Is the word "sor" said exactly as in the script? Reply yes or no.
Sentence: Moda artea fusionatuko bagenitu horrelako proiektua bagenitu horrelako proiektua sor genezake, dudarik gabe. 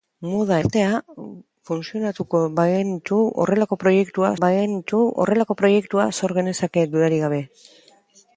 yes